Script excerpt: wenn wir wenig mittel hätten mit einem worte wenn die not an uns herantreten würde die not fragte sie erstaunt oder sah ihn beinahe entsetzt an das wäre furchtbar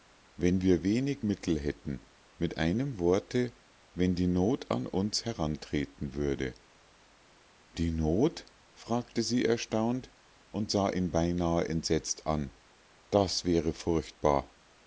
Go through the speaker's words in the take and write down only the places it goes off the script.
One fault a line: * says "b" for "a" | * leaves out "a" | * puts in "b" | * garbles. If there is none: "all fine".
* says "und" for "oder"